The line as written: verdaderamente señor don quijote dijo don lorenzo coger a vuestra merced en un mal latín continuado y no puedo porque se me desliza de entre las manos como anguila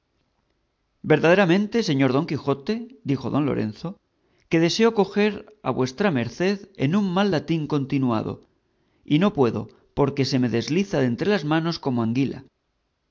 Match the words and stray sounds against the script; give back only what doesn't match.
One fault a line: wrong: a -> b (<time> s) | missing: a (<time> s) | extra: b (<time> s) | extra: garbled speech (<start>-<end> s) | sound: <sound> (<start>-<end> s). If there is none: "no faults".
extra: que deseo (4.5 s)